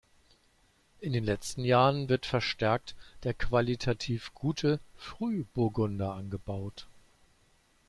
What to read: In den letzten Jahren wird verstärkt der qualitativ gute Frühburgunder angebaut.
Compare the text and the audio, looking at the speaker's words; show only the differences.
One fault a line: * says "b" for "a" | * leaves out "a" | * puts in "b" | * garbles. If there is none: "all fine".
all fine